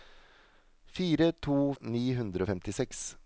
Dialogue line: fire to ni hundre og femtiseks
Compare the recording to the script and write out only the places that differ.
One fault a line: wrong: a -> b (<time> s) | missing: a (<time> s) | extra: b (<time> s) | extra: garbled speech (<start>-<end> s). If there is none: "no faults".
no faults